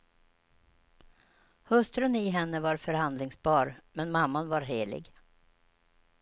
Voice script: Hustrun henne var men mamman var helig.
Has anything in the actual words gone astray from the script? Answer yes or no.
yes